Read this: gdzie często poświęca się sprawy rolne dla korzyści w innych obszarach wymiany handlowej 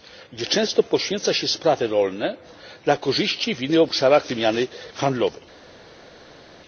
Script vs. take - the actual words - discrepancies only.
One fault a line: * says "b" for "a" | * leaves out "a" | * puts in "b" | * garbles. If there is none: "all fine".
all fine